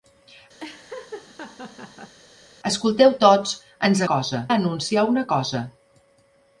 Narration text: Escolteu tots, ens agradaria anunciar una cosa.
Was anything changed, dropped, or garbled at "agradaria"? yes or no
yes